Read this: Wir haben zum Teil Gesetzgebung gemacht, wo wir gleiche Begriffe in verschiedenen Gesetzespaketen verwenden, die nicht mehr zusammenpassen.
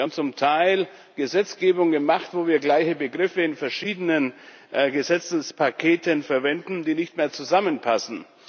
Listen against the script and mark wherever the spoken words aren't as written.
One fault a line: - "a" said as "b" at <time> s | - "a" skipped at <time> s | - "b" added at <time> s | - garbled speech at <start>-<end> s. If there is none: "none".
none